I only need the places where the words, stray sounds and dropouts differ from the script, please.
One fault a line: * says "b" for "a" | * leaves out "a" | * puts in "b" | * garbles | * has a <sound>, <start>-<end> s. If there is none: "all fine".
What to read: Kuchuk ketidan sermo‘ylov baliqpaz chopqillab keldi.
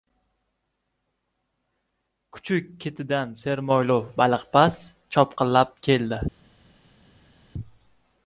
all fine